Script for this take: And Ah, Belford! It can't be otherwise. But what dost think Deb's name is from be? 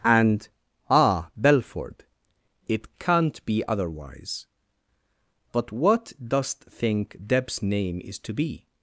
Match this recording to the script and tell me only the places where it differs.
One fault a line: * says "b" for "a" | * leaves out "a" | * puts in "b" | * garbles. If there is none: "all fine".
* says "to" for "from"